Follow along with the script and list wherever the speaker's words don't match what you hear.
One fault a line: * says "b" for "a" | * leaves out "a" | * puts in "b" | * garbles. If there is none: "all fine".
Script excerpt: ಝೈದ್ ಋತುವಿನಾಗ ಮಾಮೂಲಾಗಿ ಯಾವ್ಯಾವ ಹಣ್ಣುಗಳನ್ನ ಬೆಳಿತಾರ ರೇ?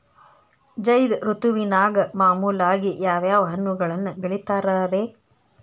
all fine